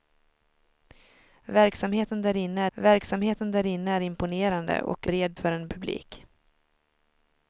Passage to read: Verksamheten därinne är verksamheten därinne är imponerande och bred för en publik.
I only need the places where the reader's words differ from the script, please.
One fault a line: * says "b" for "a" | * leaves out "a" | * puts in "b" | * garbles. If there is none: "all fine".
all fine